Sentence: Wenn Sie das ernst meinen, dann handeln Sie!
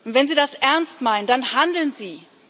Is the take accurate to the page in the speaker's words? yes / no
yes